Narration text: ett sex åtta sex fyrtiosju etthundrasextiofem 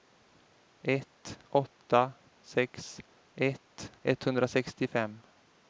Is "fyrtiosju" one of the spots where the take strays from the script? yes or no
yes